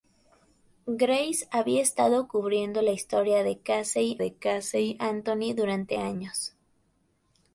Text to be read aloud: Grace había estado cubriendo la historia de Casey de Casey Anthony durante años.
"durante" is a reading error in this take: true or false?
false